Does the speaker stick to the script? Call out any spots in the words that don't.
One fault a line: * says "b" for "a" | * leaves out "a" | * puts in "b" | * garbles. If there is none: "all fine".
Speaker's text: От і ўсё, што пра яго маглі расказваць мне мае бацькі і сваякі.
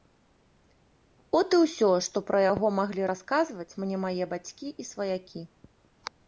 all fine